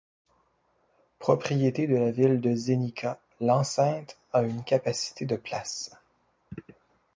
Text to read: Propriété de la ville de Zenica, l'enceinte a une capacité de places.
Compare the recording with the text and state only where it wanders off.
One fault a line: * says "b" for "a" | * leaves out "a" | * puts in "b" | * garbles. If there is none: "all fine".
all fine